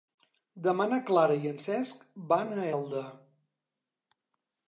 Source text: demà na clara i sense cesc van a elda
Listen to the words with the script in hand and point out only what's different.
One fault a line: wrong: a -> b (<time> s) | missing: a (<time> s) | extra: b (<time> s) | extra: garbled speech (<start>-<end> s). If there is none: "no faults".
wrong: sense -> en (1.5 s)